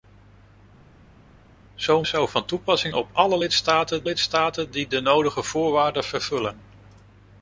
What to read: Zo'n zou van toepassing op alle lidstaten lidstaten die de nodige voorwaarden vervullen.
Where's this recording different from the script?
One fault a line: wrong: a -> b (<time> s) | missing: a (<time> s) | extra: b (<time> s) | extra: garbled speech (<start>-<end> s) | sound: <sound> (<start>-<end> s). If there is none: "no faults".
no faults